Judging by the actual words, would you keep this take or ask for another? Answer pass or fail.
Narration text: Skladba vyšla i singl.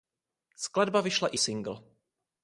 pass